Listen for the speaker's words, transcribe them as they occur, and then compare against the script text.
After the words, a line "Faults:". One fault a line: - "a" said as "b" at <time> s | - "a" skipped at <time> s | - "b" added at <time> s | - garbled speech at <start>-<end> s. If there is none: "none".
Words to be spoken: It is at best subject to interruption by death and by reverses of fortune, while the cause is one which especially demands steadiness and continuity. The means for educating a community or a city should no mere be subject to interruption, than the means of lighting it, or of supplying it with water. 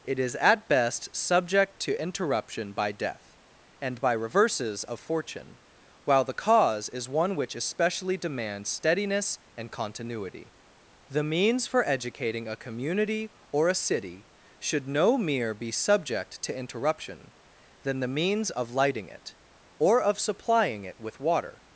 It is at best subject to interruption by death and by reverses of fortune, while the cause is one which especially demands steadiness and continuity. The means for educating a community or a city should no mere be subject to interruption, than the means of lighting it, or of supplying it with water.
Faults:
none